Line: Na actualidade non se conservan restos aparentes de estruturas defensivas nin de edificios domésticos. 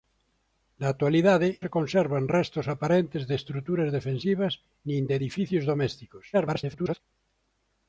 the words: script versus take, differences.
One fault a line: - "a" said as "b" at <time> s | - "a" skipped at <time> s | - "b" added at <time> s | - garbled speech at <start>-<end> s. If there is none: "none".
- "non" skipped at 1.5 s
- garbled speech at 6.3-7.0 s